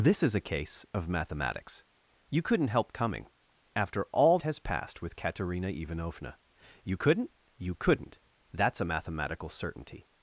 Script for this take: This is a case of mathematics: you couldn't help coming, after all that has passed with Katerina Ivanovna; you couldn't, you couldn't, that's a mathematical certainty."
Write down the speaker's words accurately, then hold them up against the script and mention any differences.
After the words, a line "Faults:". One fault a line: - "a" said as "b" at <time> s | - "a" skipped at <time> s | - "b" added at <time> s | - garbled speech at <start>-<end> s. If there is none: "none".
This is a case of mathematics: you couldn't help coming, after all has passed with Katerina Ivanovna; you couldn't, you couldn't, that's a mathematical certainty."
Faults:
- "that" skipped at 4.4 s